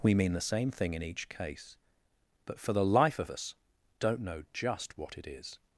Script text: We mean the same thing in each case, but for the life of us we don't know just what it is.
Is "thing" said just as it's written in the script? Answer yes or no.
yes